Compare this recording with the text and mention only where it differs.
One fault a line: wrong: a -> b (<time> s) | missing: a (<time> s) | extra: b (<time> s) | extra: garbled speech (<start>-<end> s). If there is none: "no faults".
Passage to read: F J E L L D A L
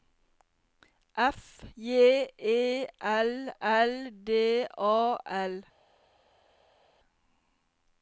no faults